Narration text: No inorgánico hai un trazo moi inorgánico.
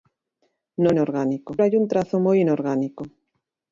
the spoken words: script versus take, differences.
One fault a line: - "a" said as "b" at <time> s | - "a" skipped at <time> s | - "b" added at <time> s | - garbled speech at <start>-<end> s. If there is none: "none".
none